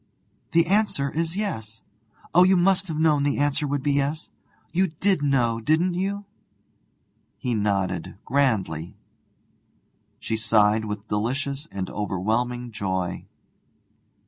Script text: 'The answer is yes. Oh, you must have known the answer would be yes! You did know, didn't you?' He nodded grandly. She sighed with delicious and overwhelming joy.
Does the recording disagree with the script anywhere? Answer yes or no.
no